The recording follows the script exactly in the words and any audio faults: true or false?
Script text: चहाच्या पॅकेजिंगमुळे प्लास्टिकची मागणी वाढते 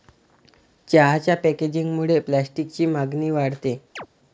false